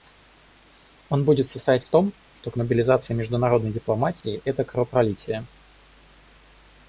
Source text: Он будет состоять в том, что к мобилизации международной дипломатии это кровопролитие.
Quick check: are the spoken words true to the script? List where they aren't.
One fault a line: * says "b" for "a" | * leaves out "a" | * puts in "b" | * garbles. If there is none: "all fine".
all fine